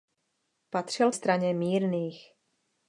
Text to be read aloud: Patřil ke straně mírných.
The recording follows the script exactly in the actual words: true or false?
false